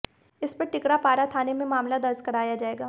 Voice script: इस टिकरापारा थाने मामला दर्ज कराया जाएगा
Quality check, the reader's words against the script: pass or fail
fail